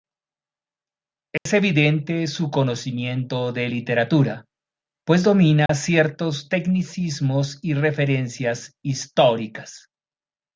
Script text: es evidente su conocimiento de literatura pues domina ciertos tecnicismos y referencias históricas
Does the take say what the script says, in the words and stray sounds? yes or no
no